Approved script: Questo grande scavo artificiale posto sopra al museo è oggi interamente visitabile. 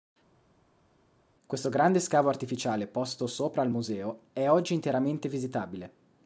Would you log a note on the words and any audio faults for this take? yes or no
no